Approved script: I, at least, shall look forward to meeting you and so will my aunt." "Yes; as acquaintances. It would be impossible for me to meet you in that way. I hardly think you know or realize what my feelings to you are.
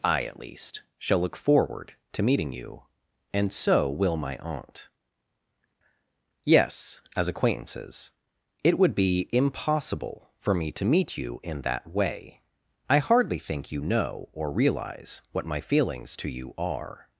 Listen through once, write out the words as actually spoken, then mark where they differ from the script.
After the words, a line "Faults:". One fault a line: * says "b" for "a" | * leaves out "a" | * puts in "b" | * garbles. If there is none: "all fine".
I, at least, shall look forward to meeting you and so will my aunt." "Yes; as acquaintances. It would be impossible for me to meet you in that way. I hardly think you know or realize what my feelings to you are.
Faults:
all fine